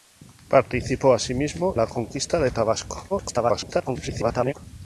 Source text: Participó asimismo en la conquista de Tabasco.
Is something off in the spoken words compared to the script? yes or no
yes